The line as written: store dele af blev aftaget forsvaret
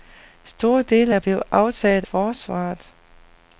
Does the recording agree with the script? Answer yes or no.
yes